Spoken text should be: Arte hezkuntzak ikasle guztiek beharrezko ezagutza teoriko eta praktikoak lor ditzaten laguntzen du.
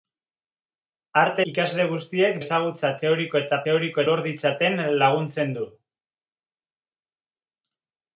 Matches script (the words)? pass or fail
fail